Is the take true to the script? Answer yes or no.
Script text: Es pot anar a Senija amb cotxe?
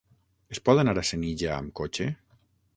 yes